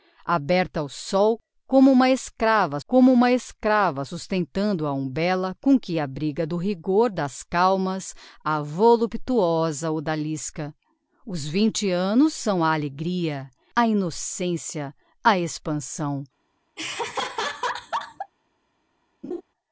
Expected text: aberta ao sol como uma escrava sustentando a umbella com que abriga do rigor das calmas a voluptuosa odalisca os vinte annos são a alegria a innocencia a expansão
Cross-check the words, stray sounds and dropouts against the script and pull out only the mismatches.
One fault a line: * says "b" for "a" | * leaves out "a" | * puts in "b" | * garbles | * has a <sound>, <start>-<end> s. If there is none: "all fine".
* puts in "como uma escrava"
* has a laugh, 16.8-18.3 s
* has a laugh, 19.2-19.4 s